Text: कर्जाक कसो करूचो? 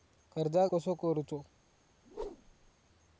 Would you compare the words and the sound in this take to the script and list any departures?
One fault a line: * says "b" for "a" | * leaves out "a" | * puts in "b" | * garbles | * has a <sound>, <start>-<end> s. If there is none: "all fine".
* has a whoosh, 2.0-2.7 s